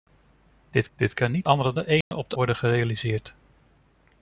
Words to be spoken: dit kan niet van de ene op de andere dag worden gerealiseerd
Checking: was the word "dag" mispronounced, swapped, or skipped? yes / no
yes